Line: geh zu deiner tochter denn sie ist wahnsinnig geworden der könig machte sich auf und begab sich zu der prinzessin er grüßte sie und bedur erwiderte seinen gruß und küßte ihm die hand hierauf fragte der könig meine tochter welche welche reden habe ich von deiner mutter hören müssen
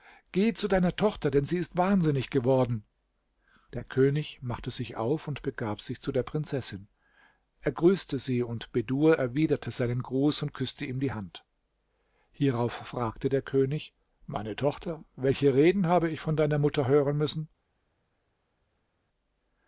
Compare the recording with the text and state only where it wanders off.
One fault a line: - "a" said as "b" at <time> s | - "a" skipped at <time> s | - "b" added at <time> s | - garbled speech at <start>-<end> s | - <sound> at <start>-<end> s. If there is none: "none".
- "welche" skipped at 15.6 s